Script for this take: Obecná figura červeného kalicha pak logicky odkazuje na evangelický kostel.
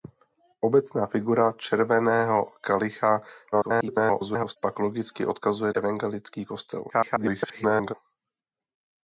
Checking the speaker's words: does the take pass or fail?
fail